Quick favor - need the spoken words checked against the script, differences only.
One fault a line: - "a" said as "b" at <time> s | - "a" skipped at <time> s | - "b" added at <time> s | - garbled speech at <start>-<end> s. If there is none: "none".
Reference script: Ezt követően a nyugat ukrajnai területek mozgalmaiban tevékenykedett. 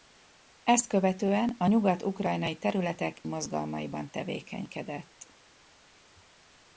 none